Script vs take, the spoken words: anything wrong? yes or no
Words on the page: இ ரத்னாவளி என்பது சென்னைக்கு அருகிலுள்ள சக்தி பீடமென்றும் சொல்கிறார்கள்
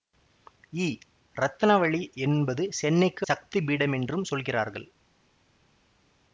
yes